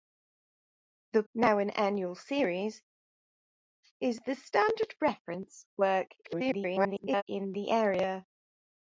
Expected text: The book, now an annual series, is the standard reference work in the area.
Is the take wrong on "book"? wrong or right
wrong